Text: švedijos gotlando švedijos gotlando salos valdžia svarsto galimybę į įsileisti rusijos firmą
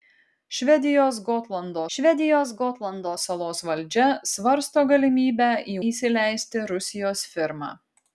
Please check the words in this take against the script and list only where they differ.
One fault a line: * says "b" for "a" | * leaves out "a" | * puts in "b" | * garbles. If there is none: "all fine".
all fine